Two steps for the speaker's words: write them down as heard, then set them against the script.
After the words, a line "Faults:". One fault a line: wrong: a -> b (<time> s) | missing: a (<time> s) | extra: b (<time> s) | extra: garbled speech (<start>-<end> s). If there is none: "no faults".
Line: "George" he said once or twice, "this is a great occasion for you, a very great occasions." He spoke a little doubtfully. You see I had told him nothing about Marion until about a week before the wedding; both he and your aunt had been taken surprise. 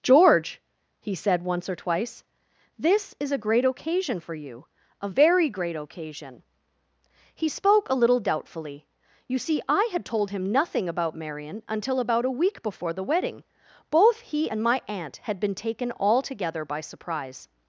"George" he said once or twice, "this is a great occasion for you, a very great occasion." He spoke a little doubtfully. You see I had told him nothing about Marion until about a week before the wedding; both he and my aunt had been taken altogether by surprise.
Faults:
wrong: occasions -> occasion (5.7 s)
wrong: your -> my (14.6 s)
extra: altogether by (15.9 s)